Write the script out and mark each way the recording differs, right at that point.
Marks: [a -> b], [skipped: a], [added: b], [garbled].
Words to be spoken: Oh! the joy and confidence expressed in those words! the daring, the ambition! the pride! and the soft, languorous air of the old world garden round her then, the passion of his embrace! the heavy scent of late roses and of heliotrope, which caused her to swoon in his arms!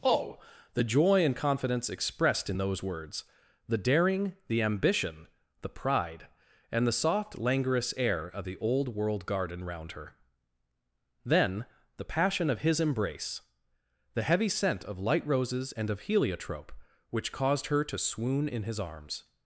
Oh! the joy and confidence expressed in those words! the daring, the ambition! the pride! and the soft, languorous air of the old world garden round her then, the passion of his embrace! the heavy scent of [late -> light] roses and of heliotrope, which caused her to swoon in his arms!